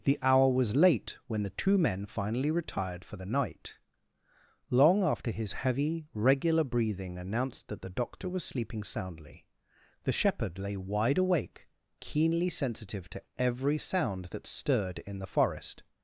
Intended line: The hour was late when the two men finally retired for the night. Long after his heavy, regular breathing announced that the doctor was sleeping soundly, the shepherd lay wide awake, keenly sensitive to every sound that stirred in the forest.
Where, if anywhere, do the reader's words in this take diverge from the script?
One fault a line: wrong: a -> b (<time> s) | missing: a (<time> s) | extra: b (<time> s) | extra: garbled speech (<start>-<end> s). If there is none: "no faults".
no faults